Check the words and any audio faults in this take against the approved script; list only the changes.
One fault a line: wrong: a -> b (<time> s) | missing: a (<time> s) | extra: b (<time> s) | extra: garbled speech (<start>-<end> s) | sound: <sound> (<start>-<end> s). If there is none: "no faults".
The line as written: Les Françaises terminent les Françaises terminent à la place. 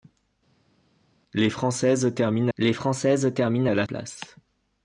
no faults